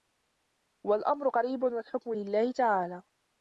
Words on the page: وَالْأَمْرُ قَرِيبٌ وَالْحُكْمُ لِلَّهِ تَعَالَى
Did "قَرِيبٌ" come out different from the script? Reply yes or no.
no